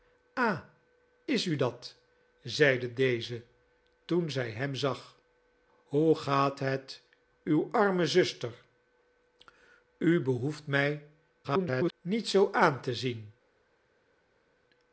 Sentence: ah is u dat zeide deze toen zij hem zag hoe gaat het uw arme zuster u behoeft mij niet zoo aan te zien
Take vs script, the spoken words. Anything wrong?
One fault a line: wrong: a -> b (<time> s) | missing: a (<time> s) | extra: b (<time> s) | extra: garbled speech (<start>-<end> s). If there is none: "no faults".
extra: garbled speech (11.4-11.9 s)